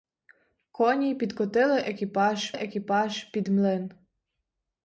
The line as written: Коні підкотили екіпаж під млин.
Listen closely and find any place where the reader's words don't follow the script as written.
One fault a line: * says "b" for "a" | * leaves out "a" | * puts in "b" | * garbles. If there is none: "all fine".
* puts in "екіпаж"